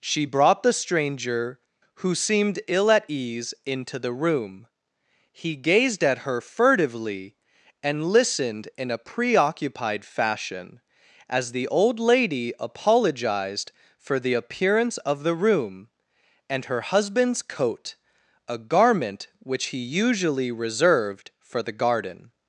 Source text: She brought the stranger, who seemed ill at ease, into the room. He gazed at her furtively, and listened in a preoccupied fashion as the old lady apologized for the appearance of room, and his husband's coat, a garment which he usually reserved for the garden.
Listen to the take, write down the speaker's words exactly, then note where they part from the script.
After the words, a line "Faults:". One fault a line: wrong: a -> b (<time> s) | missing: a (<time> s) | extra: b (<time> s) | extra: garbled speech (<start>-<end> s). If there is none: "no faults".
She brought the stranger, who seemed ill at ease, into the room. He gazed at her furtively, and listened in a preoccupied fashion as the old lady apologized for the appearance of the room, and her husband's coat, a garment which he usually reserved for the garden.
Faults:
extra: the (15.2 s)
wrong: his -> her (16.7 s)